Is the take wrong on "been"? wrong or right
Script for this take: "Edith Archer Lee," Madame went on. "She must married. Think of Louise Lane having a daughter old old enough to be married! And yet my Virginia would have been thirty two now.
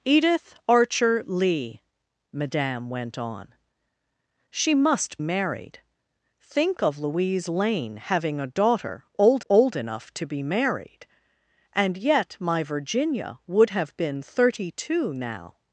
right